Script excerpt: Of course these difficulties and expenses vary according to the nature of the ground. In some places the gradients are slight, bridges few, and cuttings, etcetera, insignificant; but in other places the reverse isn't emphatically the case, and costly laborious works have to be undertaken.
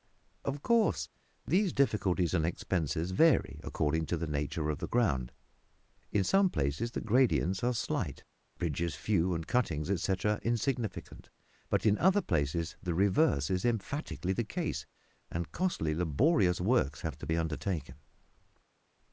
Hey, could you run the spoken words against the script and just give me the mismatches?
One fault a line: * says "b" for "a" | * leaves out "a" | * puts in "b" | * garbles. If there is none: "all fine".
* says "is" for "isn't"